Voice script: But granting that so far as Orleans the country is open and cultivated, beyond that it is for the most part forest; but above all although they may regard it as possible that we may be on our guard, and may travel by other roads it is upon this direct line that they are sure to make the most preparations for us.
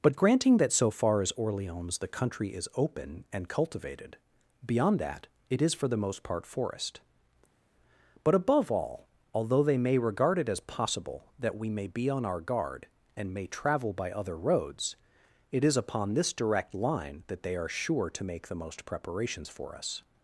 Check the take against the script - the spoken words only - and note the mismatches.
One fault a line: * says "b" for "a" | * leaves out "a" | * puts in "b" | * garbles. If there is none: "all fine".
all fine